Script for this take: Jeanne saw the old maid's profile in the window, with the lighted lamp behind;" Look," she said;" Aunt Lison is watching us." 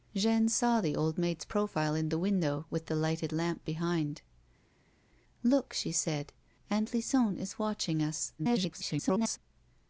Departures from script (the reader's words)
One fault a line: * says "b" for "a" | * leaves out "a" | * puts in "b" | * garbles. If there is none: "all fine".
* garbles